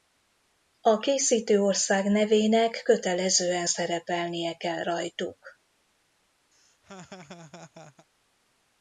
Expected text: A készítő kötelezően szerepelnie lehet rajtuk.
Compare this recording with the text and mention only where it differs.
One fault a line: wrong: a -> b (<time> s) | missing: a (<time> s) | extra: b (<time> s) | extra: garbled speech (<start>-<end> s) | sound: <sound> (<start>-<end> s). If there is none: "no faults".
extra: ország nevének (1.6 s)
wrong: lehet -> kell (4.5 s)
sound: laugh (6.5-8.1 s)